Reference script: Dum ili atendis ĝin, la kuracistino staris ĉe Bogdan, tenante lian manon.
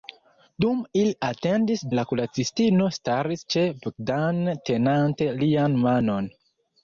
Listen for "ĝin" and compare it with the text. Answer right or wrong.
wrong